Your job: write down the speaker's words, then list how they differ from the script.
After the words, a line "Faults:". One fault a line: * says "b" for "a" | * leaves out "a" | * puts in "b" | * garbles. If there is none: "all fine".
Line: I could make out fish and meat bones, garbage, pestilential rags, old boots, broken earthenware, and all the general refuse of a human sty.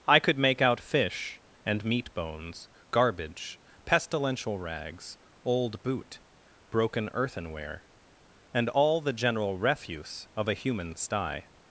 I could make out fish and meat bones, garbage, pestilential rags, old boot, broken earthenware, and all the general refuse of a human sty.
Faults:
* says "boot" for "boots"